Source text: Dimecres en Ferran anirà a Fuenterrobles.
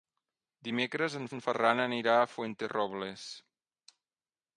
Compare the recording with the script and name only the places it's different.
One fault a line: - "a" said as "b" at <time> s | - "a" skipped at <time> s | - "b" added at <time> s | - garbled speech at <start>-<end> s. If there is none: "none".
- "en" added at 1.3 s